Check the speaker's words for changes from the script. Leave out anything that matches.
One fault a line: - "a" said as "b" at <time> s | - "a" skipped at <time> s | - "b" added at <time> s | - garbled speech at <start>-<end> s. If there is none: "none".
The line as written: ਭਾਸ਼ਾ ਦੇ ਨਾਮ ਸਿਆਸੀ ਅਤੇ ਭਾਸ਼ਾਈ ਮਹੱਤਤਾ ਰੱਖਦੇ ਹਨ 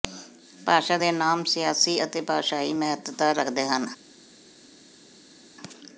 none